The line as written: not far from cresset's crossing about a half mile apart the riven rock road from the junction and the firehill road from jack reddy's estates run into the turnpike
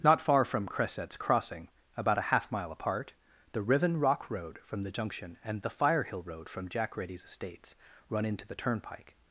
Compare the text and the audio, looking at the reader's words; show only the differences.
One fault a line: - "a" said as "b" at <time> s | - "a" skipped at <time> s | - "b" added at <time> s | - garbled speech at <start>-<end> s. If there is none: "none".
none